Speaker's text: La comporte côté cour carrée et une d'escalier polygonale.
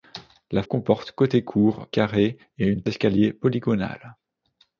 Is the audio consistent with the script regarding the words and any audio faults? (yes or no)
yes